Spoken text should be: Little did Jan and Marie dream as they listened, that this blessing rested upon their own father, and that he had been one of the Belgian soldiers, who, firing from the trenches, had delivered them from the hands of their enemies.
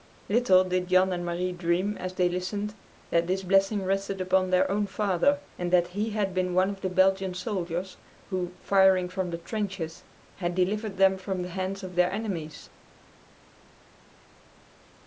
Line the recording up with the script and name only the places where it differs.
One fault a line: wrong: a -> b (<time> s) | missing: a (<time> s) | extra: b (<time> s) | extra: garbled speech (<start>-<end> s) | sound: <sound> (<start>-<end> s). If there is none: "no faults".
no faults